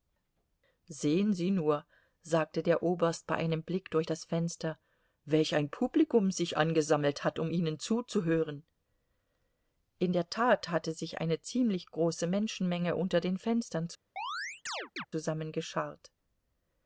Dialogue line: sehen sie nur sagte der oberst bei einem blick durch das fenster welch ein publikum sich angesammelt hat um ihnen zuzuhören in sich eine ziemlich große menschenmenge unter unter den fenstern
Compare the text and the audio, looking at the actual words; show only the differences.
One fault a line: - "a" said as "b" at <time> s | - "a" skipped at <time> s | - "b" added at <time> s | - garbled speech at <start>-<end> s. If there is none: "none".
- "der tat hatte" added at 10.1 s
- "unter" skipped at 13.2 s